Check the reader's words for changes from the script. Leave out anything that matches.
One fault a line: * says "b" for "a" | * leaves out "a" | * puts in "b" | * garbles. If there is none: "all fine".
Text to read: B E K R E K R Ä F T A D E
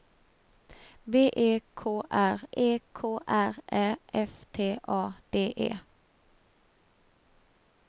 all fine